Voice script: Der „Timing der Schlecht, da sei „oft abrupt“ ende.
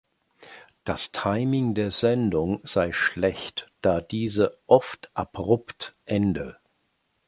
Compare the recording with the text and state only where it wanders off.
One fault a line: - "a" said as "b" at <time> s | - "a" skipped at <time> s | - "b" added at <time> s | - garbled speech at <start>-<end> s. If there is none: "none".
- "Der" said as "Das" at 0.8 s
- "Sendung sei" added at 1.9 s
- "sei" said as "diese" at 4.0 s